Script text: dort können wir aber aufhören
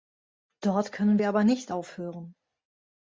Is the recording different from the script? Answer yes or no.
yes